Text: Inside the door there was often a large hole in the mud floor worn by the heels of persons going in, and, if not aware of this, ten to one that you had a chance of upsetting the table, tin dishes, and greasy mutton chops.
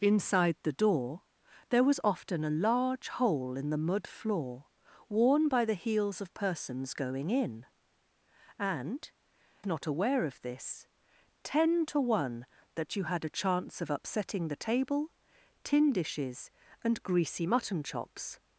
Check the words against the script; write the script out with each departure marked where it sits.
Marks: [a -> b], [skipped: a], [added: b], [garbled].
Inside the door there was often a large hole in the mud floor worn by the heels of persons going in, and, [skipped: if] not aware of this, ten to one that you had a chance of upsetting the table, tin dishes, and greasy mutton chops.